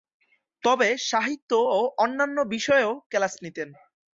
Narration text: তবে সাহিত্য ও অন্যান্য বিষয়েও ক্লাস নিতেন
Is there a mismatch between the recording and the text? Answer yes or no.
no